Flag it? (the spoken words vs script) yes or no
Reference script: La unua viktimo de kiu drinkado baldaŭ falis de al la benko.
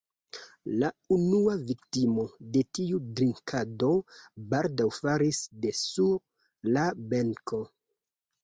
yes